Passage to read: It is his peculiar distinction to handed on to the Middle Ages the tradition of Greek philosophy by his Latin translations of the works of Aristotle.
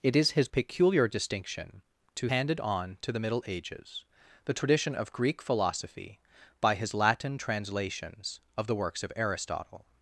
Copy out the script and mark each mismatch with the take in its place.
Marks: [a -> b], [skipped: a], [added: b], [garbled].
It is his peculiar distinction to handed on to the Middle Ages the tradition of Greek philosophy by his Latin translations of the works of Aristotle.